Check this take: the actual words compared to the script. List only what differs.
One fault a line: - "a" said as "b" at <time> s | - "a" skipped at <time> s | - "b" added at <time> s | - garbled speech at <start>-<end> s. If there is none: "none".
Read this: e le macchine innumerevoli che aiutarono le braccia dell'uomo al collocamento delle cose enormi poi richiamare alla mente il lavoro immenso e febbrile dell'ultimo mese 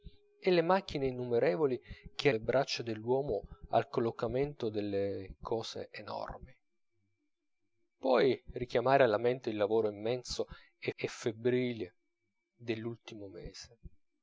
- "aiutarono" skipped at 2.3 s
- "e" added at 10.9 s